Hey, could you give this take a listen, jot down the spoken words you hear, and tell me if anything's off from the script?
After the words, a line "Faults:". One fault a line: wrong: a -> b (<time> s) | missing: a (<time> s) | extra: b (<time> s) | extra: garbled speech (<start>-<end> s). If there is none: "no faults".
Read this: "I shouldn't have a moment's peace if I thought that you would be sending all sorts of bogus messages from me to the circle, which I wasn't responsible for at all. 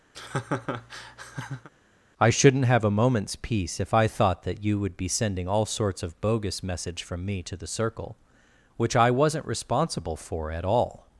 "I shouldn't have a moment's peace if I thought that you would be sending all sorts of bogus message from me to the circle, which I wasn't responsible for at all.
Faults:
wrong: messages -> message (6.6 s)